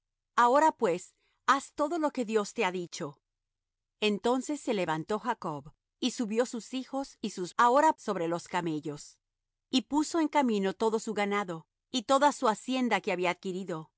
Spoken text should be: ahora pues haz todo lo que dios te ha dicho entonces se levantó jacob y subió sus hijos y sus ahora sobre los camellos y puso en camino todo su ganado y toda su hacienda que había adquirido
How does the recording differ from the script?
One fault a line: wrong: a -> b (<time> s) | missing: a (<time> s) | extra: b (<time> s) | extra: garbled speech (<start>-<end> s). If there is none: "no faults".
no faults